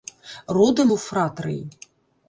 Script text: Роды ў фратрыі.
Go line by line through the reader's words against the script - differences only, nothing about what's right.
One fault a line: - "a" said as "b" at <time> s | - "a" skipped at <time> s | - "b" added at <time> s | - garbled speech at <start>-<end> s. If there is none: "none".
none